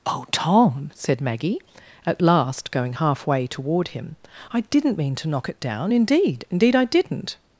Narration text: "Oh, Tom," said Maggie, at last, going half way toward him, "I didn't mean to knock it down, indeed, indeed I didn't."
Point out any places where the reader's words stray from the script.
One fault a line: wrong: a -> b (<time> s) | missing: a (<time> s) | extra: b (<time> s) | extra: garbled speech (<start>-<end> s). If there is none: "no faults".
no faults